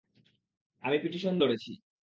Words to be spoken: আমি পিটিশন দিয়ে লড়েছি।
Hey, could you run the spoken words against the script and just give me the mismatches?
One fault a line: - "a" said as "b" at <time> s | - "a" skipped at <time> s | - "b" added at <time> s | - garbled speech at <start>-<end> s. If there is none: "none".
- "দিয়ে" skipped at 1.3 s